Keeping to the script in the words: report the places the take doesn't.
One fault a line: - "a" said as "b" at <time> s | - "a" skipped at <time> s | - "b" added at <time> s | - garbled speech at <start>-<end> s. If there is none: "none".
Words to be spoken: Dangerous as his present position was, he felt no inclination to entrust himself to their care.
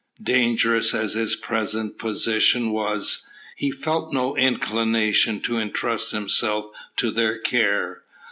none